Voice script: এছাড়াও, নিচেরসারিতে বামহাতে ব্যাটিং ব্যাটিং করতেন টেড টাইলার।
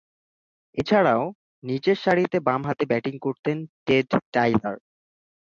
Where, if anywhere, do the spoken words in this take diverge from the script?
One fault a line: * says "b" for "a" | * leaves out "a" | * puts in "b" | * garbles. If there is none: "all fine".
* leaves out "ব্যাটিং"